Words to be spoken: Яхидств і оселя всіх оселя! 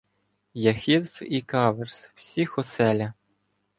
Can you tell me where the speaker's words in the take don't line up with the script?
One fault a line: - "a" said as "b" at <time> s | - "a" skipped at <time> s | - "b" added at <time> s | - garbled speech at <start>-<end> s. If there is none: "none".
- "оселя" said as "каверз" at 1.4 s